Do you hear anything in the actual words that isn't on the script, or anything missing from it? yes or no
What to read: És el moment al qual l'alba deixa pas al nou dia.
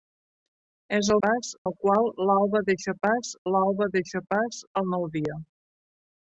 yes